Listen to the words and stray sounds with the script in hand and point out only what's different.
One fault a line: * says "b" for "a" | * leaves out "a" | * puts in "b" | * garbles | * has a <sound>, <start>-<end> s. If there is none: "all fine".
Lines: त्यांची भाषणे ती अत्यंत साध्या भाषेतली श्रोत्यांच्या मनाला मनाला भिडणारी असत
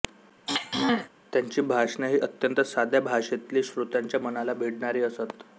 * has a throat clearing, 0.5-1.1 s
* says "ही" for "ती"
* leaves out "मनाला"